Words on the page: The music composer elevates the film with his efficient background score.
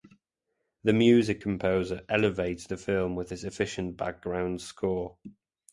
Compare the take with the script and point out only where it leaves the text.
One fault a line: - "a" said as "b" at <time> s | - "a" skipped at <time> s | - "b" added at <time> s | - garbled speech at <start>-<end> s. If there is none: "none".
none